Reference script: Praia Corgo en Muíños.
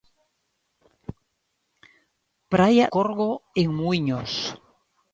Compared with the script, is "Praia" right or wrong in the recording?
right